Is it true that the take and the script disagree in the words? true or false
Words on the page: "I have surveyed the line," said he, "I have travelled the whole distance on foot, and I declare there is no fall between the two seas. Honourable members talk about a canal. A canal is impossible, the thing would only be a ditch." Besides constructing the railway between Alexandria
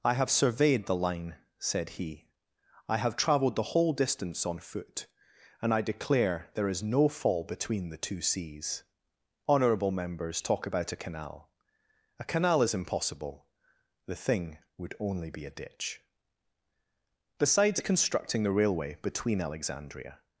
false